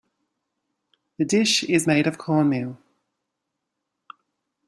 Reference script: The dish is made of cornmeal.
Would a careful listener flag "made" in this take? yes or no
no